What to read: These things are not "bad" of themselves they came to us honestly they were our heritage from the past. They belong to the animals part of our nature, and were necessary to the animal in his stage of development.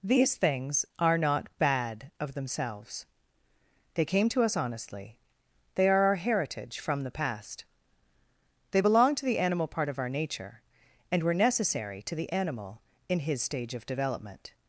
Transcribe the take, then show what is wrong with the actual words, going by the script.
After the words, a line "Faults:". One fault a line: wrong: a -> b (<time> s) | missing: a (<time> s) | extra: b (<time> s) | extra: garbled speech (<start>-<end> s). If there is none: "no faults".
These things are not "bad" of themselves they came to us honestly they are our heritage from the past. They belong to the animal part of our nature, and were necessary to the animal in his stage of development.
Faults:
wrong: were -> are (5.9 s)
wrong: animals -> animal (9.4 s)